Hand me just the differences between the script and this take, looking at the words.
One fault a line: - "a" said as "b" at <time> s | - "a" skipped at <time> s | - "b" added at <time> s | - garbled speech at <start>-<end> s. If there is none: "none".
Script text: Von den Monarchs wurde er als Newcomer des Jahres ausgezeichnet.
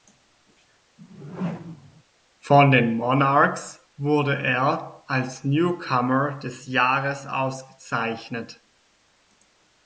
none